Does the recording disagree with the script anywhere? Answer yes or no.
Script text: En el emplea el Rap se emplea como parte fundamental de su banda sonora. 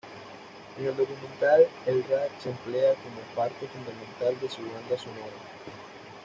yes